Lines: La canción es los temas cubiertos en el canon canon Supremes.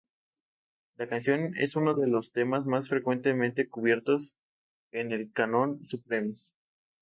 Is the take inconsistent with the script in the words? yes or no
yes